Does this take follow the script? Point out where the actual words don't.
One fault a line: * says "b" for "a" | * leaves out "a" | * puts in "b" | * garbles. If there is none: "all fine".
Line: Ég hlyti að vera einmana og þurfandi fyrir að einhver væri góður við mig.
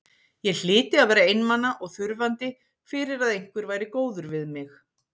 all fine